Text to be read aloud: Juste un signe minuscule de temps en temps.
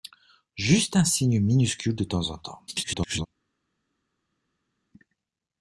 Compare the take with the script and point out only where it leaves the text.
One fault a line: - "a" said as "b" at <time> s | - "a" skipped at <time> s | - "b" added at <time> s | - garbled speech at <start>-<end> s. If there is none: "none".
- garbled speech at 2.7-3.3 s